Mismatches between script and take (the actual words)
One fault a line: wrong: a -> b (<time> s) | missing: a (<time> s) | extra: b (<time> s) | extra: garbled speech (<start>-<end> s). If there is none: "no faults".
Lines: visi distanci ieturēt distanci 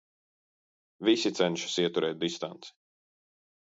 wrong: distanci -> cenšas (1.4 s)